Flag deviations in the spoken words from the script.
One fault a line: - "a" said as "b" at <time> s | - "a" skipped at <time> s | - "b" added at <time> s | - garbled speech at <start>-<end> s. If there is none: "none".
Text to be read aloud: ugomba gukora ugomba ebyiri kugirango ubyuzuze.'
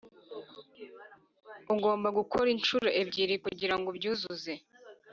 - "ugomba" said as "inshuro" at 2.5 s